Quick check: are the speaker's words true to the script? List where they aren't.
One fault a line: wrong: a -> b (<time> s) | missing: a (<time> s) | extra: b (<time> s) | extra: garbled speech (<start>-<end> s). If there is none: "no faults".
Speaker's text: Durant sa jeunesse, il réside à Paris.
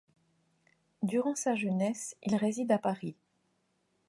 no faults